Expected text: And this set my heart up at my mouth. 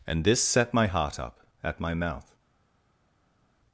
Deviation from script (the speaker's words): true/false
false